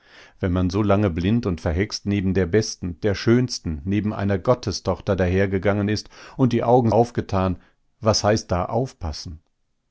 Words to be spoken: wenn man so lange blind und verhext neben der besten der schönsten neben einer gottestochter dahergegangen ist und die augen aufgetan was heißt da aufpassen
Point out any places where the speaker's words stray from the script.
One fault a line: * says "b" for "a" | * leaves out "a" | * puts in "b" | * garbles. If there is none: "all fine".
all fine